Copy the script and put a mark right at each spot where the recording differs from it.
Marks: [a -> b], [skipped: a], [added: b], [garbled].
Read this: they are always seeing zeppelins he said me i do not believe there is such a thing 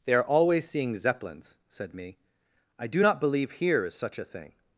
they are always seeing zeppelins [skipped: he] said me i do not believe [there -> here] is such a thing